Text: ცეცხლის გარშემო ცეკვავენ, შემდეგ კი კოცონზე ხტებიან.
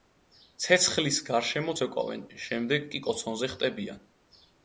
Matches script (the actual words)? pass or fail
pass